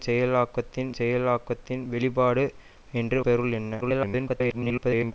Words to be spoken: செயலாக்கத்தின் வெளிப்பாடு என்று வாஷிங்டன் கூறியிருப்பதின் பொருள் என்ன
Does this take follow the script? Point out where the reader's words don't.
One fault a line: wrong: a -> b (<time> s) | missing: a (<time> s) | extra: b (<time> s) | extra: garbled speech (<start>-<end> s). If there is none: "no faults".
extra: செயலாக்கத்தின் (1.0 s)
missing: வாஷிங்டன் கூறியிருப்பதின் (3.2 s)
extra: garbled speech (3.8-5.1 s)